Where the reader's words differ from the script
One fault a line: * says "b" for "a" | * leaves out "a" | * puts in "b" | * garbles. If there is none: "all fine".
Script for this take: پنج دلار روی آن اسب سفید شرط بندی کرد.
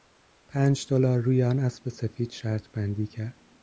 all fine